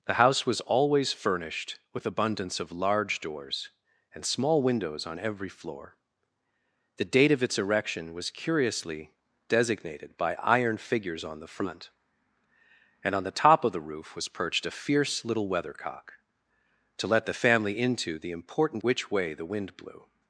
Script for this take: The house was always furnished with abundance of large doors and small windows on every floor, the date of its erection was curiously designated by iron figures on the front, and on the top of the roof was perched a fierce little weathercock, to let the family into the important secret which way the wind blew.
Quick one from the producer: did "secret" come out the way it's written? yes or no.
no